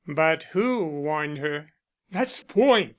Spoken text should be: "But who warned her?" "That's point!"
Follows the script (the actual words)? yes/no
yes